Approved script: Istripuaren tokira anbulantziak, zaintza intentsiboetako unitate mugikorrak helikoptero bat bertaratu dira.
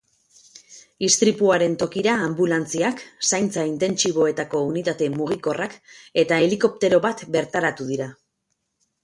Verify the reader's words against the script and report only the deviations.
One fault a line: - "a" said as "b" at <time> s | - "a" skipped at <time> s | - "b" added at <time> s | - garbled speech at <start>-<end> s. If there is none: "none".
- "eta" added at 6.3 s